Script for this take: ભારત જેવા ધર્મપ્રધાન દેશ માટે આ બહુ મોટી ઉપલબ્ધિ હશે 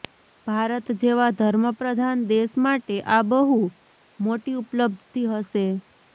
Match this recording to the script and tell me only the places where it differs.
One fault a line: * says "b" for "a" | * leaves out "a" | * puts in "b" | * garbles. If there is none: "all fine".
all fine